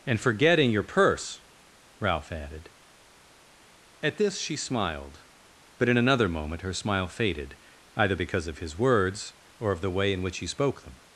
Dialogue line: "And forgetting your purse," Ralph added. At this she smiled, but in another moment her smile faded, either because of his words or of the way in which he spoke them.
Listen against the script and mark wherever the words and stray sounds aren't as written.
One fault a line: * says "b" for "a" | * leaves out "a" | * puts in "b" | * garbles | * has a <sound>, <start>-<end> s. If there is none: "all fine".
all fine